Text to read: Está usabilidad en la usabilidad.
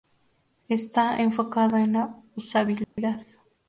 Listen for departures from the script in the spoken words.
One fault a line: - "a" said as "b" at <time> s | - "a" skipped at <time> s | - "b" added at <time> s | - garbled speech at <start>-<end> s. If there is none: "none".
- "usabilidad" said as "enfocado" at 1.2 s